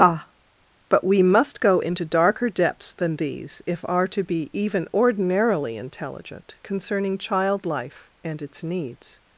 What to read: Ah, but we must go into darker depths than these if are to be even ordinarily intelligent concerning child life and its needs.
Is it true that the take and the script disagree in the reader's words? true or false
false